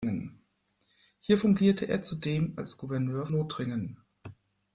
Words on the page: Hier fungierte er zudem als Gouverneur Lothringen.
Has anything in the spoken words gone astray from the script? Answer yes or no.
no